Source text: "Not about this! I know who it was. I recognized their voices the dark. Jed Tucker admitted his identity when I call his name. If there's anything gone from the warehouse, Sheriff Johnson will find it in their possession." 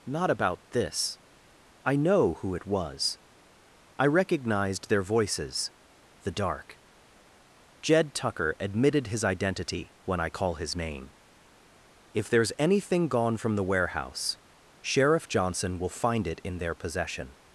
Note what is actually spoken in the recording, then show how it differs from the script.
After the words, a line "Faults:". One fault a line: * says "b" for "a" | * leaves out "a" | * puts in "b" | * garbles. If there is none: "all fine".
"Not about this! I know who it was. I recognized their voices the dark. Jed Tucker admitted his identity when I call his name. If there's anything gone from the warehouse, Sheriff Johnson will find it in their possession."
Faults:
all fine